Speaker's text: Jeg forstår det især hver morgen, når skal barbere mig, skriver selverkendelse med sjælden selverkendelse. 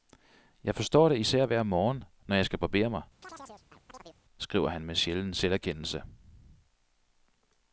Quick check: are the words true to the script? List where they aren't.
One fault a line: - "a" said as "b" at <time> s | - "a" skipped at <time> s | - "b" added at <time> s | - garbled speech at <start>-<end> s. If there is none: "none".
- "jeg" added at 2.4 s
- "selverkendelse" said as "han" at 4.7 s